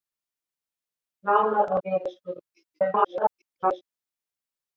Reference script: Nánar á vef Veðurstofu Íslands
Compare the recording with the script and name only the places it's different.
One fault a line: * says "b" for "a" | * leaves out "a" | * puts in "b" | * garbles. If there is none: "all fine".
* leaves out "vef"
* garbles